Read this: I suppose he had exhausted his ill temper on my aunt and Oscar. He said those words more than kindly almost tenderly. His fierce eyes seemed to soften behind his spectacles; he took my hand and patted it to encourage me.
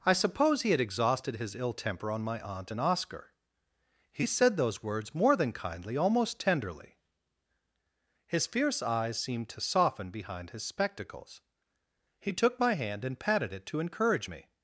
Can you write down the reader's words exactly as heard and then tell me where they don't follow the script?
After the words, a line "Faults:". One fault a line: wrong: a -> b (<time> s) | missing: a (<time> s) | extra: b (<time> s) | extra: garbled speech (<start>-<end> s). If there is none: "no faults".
I suppose he had exhausted his ill temper on my aunt and Oscar. He said those words more than kindly almost tenderly. His fierce eyes seemed to soften behind his spectacles; he took my hand and patted it to encourage me.
Faults:
no faults